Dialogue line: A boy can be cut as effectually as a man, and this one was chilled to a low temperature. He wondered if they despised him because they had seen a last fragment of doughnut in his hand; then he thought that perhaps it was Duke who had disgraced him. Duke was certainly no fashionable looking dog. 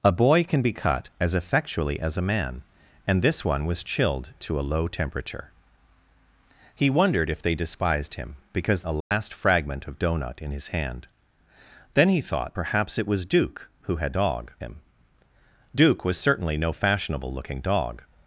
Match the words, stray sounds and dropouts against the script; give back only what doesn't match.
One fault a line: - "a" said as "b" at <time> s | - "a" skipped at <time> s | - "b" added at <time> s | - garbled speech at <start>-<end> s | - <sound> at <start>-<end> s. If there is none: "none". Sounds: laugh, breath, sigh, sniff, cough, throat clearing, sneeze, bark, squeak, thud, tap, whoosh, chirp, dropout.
- "they had seen" skipped at 8.8 s
- dropout at 9.0-9.1 s
- "that" skipped at 12.6 s
- "disgraced" said as "dog" at 14.1 s